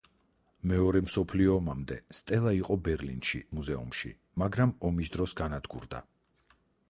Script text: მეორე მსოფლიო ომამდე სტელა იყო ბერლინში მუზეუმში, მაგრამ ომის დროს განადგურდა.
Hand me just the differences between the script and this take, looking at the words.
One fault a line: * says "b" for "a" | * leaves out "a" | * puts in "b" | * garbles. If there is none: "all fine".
all fine